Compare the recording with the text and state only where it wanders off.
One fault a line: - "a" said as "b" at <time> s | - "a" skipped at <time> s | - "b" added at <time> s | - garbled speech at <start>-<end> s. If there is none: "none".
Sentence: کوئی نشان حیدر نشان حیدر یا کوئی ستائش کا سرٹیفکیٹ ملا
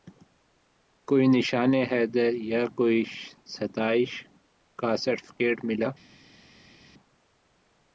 - "نشان حیدر" skipped at 2.3 s